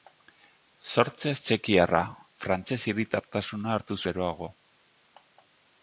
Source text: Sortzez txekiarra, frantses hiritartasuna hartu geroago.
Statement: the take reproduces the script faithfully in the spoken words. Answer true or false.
true